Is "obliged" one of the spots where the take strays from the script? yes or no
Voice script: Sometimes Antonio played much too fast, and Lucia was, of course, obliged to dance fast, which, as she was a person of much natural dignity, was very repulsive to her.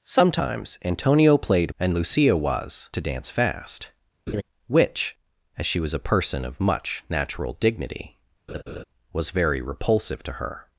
yes